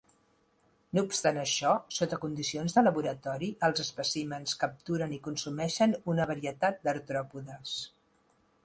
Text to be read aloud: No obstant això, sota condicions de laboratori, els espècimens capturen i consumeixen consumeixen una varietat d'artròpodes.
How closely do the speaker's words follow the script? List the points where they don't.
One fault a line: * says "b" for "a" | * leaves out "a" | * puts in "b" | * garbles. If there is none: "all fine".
* leaves out "consumeixen"